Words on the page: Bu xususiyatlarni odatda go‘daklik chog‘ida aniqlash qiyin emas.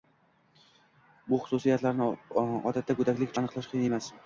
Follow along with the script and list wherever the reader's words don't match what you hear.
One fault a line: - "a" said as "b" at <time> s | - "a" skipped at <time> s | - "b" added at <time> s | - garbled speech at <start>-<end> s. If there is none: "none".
- "chog‘ida" skipped at 3.4 s